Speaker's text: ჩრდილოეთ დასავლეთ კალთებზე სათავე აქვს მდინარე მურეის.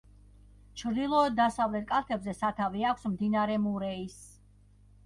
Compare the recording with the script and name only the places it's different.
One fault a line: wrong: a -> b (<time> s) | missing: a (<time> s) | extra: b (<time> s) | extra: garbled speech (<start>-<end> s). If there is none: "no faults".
no faults